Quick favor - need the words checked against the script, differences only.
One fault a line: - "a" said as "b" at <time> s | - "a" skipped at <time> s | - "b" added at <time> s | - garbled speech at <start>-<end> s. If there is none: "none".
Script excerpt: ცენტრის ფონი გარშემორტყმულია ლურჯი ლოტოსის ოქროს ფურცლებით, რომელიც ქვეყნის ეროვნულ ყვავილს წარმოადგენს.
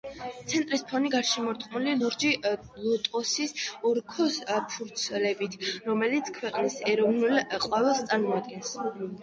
none